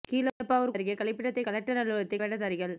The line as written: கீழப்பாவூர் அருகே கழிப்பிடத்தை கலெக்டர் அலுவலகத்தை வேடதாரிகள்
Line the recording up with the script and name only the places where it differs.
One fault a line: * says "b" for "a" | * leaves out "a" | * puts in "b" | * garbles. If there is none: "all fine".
all fine